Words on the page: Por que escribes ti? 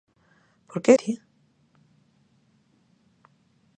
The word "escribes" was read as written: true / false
false